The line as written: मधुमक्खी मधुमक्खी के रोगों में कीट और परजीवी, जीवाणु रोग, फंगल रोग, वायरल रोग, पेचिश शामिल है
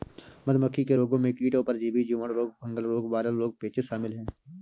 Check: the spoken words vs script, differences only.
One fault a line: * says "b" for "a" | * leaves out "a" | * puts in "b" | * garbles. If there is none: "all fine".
* leaves out "मधुमक्खी"